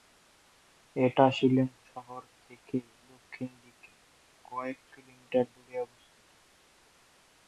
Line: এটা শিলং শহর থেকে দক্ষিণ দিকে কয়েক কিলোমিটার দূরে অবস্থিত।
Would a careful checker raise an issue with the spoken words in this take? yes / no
no